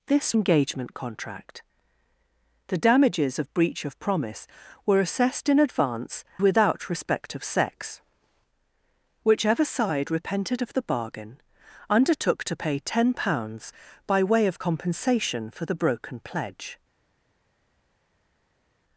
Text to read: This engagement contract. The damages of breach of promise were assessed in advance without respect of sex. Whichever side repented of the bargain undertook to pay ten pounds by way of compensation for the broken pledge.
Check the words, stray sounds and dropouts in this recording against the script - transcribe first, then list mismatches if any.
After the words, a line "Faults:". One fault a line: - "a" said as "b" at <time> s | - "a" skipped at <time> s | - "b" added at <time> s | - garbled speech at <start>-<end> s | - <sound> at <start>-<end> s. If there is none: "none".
This engagement contract. The damages of breach of promise were assessed in advance without respect of sex. Whichever side repented of the bargain undertook to pay ten pounds by way of compensation for the broken pledge.
Faults:
none